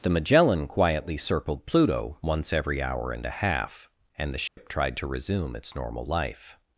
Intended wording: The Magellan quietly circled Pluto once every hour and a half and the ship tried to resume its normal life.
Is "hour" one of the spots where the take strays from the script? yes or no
no